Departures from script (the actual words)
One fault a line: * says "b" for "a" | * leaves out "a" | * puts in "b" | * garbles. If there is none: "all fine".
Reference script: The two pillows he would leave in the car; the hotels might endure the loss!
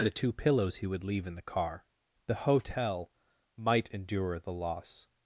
* says "hotel" for "hotels"